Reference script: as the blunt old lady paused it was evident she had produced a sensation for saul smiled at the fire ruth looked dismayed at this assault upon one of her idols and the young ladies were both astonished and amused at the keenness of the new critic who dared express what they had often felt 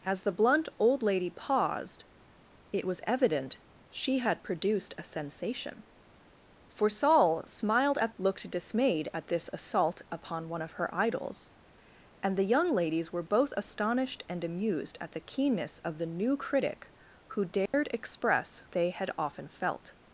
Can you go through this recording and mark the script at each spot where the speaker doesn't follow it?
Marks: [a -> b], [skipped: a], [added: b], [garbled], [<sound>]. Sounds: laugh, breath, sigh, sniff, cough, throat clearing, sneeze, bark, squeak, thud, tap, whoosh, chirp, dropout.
as the blunt old lady paused it was evident she had produced a sensation for saul smiled at [skipped: the fire ruth] looked dismayed at this assault upon one of her idols and the young ladies were both astonished and amused at the keenness of the new critic who dared [dropout] express [skipped: what] they had often felt